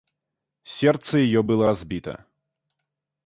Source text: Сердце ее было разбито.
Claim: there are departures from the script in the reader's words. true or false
false